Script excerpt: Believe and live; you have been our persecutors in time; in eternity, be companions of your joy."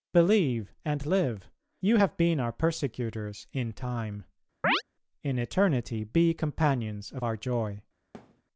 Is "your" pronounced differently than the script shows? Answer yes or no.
yes